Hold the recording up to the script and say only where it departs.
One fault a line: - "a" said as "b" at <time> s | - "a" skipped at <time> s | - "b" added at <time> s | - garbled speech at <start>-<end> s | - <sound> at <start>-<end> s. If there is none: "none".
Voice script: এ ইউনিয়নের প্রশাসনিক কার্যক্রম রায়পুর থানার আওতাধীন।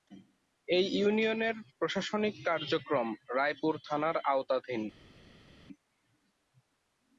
none